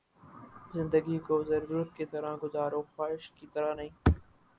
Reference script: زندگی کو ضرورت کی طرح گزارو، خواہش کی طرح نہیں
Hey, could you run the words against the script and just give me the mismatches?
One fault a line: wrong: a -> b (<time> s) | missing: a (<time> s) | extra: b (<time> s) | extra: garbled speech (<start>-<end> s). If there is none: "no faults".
no faults